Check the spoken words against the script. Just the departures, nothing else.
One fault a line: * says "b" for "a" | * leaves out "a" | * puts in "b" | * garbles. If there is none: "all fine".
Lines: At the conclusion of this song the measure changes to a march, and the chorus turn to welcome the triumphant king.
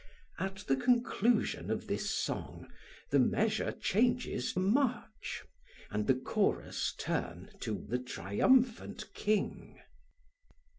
* leaves out "to"
* leaves out "welcome"